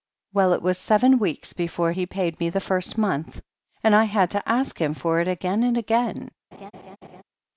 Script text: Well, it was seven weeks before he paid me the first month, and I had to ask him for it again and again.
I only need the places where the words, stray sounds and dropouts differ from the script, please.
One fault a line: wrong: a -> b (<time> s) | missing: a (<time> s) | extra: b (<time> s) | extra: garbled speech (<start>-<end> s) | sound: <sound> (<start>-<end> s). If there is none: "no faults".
sound: laugh (6.5-7.2 s)